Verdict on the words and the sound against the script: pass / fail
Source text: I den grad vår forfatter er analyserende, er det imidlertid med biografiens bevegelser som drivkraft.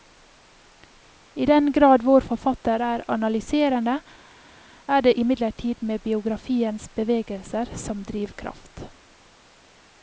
pass